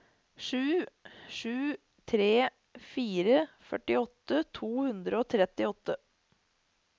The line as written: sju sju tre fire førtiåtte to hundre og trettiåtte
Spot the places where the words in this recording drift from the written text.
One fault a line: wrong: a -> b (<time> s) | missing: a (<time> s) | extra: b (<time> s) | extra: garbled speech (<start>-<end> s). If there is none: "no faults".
no faults